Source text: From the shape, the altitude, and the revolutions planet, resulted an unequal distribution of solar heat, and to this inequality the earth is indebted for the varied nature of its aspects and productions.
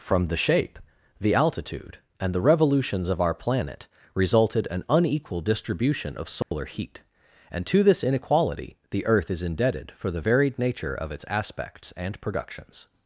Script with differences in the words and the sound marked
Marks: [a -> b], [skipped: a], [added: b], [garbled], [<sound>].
From the shape, the altitude, and the revolutions [added: of our] planet, resulted an unequal distribution of solar [dropout] heat, and to this inequality the earth is indebted for the varied nature of its aspects and productions.